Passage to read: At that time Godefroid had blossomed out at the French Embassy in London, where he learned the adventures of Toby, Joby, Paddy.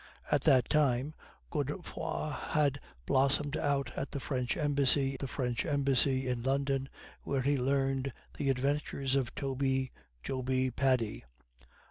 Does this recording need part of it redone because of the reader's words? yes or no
yes